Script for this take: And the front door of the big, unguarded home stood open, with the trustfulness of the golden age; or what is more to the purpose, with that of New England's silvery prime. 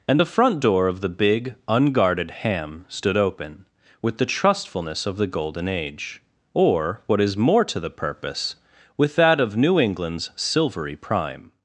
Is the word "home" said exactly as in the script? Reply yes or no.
no